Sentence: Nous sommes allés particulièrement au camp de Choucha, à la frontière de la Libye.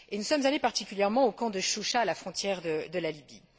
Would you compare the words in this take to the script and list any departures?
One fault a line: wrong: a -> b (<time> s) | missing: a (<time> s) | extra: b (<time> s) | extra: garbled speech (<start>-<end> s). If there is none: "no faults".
no faults